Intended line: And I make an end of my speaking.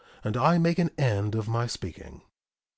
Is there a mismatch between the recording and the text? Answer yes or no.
no